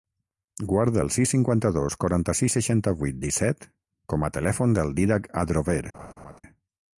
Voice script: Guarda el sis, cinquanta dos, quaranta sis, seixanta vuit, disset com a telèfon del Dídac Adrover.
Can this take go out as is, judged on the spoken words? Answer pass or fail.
pass